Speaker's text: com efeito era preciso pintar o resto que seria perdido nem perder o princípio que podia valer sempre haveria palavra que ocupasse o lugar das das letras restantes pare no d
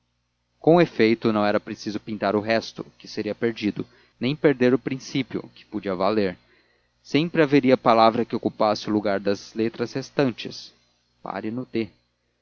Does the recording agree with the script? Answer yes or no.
no